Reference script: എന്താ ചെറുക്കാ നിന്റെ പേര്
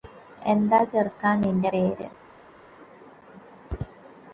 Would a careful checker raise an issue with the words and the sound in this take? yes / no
no